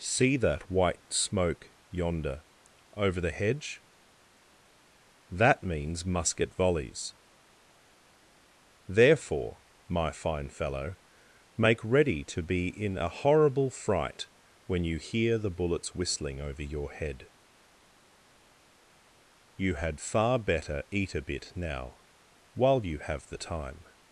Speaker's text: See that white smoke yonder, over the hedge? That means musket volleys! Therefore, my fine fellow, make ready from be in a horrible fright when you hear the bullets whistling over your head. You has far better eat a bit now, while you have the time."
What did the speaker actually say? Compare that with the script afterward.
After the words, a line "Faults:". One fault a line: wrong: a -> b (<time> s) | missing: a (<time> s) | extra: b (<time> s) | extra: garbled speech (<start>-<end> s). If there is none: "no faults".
See that white smoke yonder, over the hedge? That means musket volleys! Therefore, my fine fellow, make ready to be in a horrible fright when you hear the bullets whistling over your head. You had far better eat a bit now, while you have the time."
Faults:
wrong: from -> to (12.3 s)
wrong: has -> had (19.8 s)